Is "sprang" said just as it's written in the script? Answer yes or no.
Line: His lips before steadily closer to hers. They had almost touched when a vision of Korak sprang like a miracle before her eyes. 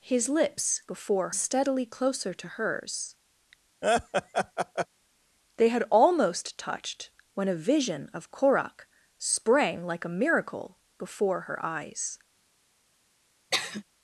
yes